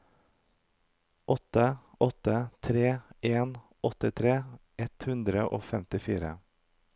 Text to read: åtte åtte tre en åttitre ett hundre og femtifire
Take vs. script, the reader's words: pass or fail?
pass